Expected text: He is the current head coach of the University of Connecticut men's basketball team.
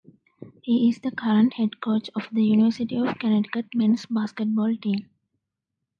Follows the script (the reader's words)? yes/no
yes